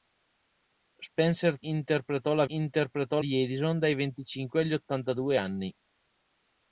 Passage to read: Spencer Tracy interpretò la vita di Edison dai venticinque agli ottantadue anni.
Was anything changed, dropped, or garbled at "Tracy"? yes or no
yes